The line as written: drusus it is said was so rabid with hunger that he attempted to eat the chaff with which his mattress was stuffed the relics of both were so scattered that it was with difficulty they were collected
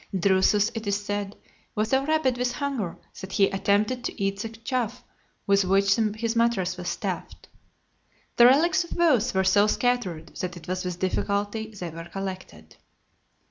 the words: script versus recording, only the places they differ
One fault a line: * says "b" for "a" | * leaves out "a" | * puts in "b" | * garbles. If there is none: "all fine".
all fine